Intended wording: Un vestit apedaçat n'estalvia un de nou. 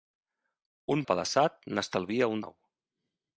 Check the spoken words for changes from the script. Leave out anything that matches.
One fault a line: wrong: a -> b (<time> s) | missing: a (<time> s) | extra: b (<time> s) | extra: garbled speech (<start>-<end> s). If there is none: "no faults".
missing: vestit (1.0 s)
missing: de (2.5 s)